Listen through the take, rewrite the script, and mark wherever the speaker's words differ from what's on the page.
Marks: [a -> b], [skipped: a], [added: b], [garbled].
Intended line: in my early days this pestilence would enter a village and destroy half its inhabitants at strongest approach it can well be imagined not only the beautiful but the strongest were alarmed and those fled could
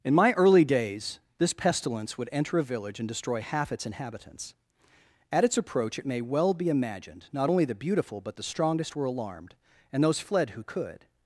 in my early days this pestilence would enter a village and destroy half its inhabitants at [strongest -> its] approach it [can -> may] well be imagined not only the beautiful but the strongest were alarmed and those fled [added: who] could